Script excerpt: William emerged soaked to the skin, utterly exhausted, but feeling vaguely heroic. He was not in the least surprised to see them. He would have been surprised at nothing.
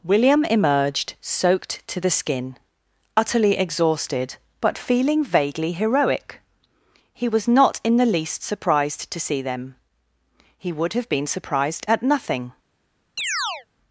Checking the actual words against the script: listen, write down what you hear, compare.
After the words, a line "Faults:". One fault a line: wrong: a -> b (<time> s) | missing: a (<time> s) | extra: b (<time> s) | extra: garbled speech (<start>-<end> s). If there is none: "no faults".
William emerged soaked to the skin, utterly exhausted, but feeling vaguely heroic. He was not in the least surprised to see them. He would have been surprised at nothing.
Faults:
no faults